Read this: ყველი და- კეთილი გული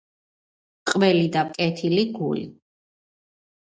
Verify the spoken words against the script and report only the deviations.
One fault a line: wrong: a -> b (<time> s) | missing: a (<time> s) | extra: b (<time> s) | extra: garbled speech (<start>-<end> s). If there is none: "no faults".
no faults